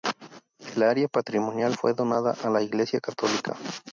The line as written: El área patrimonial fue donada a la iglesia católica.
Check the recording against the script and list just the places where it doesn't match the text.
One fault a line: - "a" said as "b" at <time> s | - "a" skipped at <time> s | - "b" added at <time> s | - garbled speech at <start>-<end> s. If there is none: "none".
none